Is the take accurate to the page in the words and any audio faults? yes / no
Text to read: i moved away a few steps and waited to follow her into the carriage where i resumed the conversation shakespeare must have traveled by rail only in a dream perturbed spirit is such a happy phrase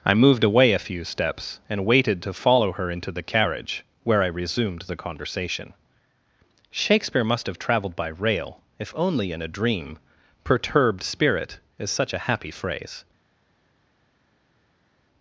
no